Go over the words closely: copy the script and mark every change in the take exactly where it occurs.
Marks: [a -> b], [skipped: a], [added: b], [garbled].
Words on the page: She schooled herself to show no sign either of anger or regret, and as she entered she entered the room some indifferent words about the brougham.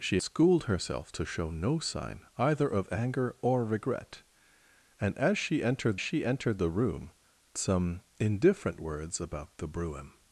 She schooled herself to show no sign either of anger or regret, and as she entered she entered the room some indifferent words about the brougham.